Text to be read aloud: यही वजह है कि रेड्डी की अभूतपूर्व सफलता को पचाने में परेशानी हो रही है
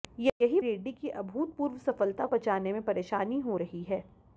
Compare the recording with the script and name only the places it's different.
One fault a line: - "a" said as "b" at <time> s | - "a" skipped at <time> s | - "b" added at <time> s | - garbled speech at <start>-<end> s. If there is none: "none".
- "वजह है कि" skipped at 0.6 s
- "को" skipped at 2.3 s